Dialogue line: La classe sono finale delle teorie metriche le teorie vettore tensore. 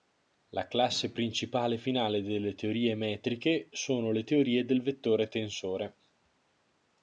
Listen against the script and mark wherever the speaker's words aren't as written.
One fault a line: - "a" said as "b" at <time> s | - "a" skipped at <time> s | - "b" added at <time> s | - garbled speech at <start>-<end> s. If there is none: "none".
- "sono" said as "principale" at 1.1 s
- "sono" added at 3.7 s
- "del" added at 4.7 s